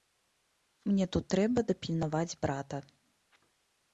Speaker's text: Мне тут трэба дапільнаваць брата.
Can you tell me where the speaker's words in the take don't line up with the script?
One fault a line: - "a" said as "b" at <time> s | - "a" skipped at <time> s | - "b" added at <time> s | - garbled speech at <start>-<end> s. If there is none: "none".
none